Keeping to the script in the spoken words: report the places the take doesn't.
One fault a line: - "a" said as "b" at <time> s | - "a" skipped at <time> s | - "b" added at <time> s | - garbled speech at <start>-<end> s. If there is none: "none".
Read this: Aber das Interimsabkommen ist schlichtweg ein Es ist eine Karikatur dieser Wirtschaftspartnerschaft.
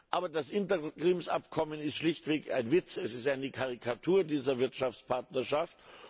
- "Witz" added at 2.7 s